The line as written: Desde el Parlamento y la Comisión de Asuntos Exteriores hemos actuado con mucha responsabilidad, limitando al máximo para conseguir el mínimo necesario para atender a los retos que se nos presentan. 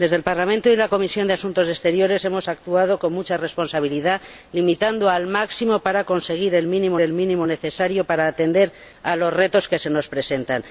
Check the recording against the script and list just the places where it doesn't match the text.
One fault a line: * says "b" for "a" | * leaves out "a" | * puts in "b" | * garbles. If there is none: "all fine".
* puts in "el mínimo"